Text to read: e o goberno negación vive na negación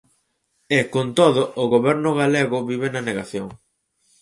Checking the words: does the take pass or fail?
fail